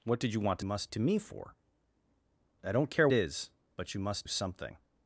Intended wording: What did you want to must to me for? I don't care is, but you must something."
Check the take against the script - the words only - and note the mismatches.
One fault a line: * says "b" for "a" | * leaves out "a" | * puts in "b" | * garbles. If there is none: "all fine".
all fine